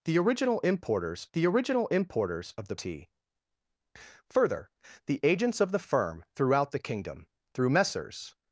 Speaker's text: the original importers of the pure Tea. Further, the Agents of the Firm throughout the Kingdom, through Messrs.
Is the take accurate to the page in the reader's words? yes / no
no